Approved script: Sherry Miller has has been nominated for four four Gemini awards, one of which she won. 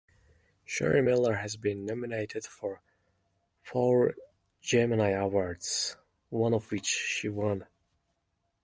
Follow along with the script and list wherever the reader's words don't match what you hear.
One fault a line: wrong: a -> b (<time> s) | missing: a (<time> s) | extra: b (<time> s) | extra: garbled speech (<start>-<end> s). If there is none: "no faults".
missing: has (1.6 s)
missing: four (4.1 s)